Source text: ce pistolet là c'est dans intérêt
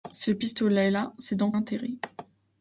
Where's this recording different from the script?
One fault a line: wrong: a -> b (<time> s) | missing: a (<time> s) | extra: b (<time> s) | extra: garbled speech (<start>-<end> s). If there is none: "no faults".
no faults